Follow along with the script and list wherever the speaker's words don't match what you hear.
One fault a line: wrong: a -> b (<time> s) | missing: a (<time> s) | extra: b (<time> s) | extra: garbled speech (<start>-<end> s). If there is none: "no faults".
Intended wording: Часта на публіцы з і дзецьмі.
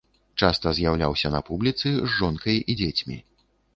extra: з'яўляўся (0.8 s)
extra: жонкай (2.2 s)